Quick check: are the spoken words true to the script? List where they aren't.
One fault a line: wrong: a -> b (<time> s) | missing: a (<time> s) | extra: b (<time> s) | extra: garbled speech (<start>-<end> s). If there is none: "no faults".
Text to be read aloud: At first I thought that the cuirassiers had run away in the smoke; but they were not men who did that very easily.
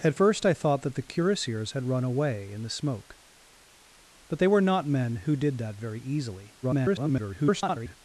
extra: garbled speech (6.6-8.0 s)